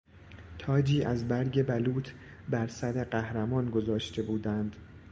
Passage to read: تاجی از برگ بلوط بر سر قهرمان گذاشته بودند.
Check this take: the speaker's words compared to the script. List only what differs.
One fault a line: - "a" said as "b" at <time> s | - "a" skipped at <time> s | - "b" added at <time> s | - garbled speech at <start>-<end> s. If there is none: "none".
none